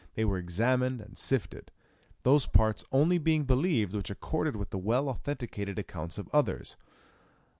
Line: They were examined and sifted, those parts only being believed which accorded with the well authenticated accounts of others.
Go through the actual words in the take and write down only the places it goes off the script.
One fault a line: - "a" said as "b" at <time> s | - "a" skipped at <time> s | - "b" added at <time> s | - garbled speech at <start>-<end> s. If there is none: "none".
none